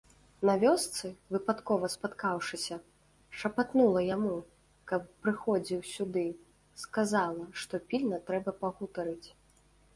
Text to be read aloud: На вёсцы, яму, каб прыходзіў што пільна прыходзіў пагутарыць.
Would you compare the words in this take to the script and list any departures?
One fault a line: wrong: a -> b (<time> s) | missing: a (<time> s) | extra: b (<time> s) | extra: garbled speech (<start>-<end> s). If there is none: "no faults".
extra: выпадкова спаткаўшыся шапатнула (1.4 s)
extra: сюды сказала (6.0 s)
wrong: прыходзіў -> трэба (8.3 s)